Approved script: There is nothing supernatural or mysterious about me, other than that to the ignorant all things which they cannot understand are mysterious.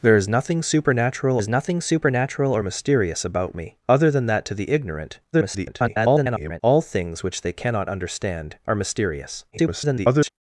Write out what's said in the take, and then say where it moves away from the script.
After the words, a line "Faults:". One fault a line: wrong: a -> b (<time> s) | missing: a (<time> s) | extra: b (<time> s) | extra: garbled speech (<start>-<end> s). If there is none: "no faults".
There is nothing supernatural is nothing supernatural or mysterious about me, other than that to the ignorant [garbled] all things which they cannot understand are mysterious. [garbled]
Faults:
extra: is nothing supernatural (1.4 s)
extra: garbled speech (5.3-6.6 s)
extra: garbled speech (9.5-10.3 s)